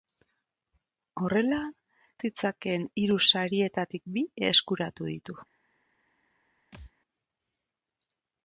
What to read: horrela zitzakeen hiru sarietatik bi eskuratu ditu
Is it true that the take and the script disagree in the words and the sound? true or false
true